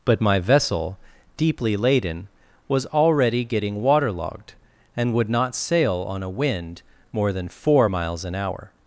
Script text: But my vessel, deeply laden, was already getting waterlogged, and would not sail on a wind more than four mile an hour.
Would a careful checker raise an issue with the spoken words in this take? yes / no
yes